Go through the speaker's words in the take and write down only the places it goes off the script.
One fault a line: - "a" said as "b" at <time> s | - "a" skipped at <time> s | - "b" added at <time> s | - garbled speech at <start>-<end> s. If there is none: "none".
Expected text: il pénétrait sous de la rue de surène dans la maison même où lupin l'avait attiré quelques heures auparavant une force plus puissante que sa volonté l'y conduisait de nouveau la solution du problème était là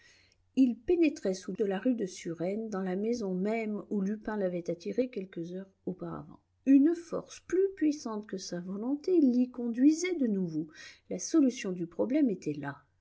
none